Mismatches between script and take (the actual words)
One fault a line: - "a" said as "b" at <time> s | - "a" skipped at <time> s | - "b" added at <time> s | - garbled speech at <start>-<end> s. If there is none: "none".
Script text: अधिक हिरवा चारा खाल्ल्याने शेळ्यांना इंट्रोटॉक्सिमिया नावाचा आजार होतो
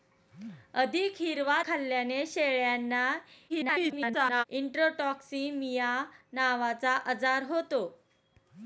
- "चारा" skipped at 1.6 s
- garbled speech at 3.5-4.4 s